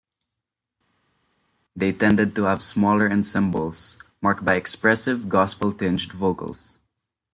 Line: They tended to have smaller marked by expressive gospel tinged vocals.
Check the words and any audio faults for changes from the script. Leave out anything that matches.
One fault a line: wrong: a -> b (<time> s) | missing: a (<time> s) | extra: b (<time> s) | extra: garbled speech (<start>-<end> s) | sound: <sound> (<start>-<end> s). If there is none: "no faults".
extra: ensembles (3.1 s)